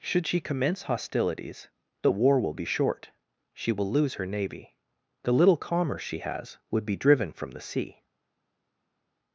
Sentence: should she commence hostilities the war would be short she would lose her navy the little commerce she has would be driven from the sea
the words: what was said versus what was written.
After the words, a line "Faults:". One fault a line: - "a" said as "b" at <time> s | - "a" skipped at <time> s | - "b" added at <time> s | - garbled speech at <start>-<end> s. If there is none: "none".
should she commence hostilities the war will be short she will lose her navy the little commerce she has would be driven from the sea
Faults:
- "would" said as "will" at 2.4 s
- "would" said as "will" at 3.7 s